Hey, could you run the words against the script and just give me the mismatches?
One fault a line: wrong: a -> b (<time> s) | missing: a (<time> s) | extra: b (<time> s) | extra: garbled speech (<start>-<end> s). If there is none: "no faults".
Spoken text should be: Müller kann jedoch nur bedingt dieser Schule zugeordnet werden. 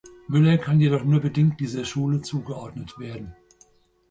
no faults